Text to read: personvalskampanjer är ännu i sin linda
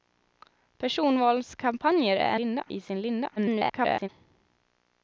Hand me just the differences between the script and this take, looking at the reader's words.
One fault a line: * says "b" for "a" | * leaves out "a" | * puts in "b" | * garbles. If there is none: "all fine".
* says "linda" for "ännu"
* garbles